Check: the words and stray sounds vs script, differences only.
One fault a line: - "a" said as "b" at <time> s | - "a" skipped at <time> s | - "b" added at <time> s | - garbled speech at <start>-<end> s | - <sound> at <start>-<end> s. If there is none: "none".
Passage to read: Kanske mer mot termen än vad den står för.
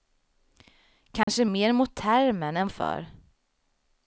- dropout at 1.2-1.3 s
- "vad den står" skipped at 2.7 s